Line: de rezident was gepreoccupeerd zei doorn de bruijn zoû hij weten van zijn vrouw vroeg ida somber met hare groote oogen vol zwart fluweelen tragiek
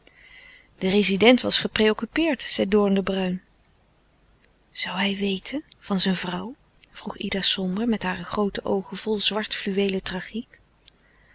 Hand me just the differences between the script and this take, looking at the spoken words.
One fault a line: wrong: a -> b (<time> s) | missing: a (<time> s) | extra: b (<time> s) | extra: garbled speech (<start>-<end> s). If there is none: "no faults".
no faults